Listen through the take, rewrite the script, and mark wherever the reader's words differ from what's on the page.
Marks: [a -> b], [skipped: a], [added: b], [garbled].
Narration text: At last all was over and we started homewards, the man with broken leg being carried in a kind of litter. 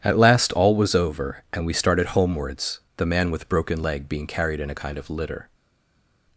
At last all was over and we started homewards, the man with broken leg being carried in a kind of litter.